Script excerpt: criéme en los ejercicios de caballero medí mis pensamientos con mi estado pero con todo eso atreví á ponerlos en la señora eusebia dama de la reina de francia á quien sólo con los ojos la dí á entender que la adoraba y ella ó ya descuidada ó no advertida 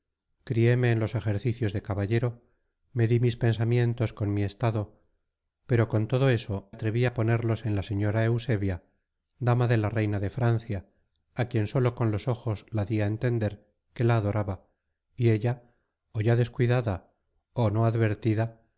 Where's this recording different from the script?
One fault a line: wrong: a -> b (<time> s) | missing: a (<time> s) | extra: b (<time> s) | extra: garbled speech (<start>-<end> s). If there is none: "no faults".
no faults